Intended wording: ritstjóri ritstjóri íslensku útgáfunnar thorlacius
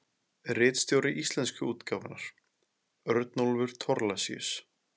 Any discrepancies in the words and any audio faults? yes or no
yes